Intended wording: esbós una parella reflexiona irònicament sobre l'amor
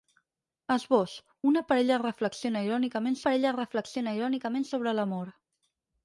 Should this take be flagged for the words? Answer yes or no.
yes